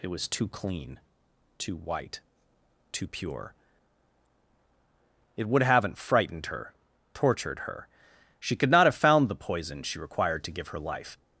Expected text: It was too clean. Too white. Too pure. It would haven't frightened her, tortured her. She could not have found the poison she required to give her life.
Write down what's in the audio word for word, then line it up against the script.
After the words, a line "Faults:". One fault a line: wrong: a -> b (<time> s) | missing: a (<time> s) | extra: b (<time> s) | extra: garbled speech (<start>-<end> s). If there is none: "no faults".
It was too clean. Too white. Too pure. It would haven't frightened her, tortured her. She could not have found the poison she required to give her life.
Faults:
no faults